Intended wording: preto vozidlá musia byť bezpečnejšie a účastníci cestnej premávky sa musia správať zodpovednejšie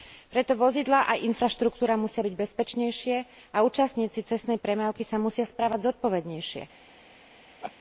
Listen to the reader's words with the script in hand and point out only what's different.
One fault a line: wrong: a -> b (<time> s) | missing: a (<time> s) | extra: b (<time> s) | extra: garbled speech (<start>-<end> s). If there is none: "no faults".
extra: aj infraštruktúra (1.1 s)